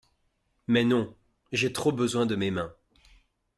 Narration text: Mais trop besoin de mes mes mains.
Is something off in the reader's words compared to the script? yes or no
yes